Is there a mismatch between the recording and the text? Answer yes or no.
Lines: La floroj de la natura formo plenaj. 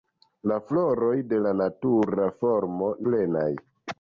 no